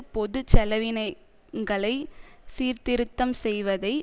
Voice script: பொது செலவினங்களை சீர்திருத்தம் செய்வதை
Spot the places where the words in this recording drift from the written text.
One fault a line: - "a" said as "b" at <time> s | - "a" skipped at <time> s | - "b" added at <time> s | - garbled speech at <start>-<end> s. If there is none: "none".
none